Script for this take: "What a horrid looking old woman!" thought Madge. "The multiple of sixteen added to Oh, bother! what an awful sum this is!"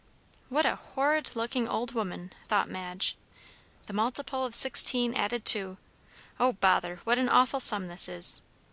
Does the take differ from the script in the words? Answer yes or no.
no